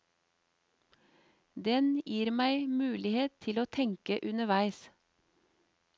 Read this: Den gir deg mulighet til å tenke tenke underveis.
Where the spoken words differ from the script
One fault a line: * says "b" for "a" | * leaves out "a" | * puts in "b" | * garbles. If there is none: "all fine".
* says "meg" for "deg"
* leaves out "tenke"